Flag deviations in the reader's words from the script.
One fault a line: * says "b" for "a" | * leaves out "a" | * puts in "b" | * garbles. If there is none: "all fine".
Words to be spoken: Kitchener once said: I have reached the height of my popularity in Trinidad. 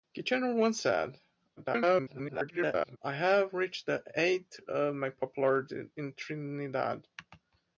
* garbles